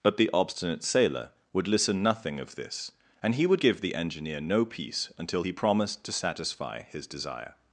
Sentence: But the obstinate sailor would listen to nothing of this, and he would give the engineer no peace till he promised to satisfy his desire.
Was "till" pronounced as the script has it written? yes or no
no